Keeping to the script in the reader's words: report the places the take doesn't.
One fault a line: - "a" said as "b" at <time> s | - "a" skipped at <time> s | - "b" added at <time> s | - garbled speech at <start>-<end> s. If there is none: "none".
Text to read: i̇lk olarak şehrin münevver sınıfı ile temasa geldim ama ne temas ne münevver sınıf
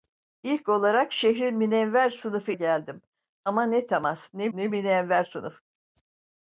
- "ile temasa" skipped at 2.5 s
- "ne" added at 4.5 s